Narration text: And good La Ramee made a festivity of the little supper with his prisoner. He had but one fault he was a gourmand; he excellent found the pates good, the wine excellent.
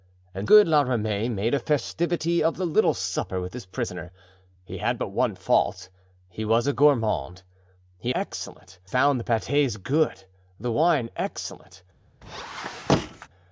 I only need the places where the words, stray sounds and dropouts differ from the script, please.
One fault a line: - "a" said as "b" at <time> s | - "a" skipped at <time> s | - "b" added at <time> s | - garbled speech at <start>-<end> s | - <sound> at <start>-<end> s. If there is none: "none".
- squeak at 12.2-13.3 s